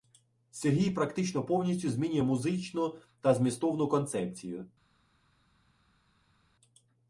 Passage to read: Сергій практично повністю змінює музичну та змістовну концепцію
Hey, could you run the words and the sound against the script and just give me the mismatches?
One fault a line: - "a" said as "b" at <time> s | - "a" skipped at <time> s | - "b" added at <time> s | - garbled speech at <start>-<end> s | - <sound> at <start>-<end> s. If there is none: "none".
none